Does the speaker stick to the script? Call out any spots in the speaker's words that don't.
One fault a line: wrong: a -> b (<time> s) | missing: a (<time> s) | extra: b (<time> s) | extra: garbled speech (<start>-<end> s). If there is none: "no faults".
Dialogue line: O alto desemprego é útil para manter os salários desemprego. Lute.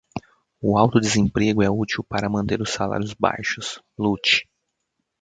wrong: desemprego -> baixos (3.1 s)